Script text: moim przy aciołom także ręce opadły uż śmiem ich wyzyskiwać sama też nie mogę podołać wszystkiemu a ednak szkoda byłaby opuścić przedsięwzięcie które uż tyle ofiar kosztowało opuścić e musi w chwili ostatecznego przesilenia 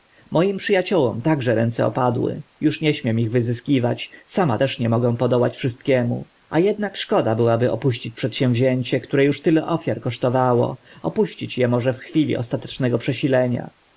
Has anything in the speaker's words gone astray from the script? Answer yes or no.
yes